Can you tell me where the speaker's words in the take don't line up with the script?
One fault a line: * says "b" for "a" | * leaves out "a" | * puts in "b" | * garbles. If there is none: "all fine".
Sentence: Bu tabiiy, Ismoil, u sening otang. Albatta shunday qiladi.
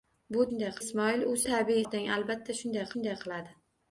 * says "shunday" for "tabiiy"
* says "tabiiy" for "sening"
* puts in "shunday"